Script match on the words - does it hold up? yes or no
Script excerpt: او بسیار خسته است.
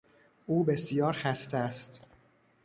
yes